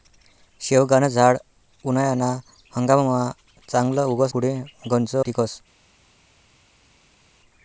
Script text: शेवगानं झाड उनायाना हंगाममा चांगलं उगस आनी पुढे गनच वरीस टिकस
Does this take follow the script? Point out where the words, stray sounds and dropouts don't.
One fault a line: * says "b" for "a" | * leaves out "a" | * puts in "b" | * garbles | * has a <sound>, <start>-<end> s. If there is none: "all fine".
* leaves out "आनी"
* leaves out "वरीस"